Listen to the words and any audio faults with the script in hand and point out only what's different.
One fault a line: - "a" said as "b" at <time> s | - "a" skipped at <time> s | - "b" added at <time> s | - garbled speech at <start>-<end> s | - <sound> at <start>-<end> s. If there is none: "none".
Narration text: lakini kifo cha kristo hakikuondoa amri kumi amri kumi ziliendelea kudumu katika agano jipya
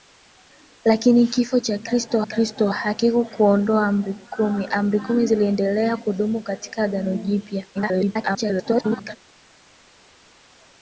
- "kristo" added at 2.2 s
- garbled speech at 7.7-9.2 s